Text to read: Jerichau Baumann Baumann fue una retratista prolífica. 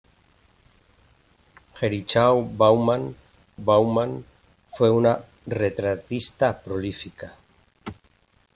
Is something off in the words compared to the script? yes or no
no